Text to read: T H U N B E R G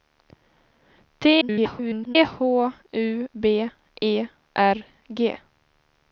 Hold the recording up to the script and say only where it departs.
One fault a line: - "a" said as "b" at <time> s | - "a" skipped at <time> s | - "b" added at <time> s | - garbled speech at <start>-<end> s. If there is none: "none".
- garbled speech at 1.4-2.2 s
- "N" skipped at 3.3 s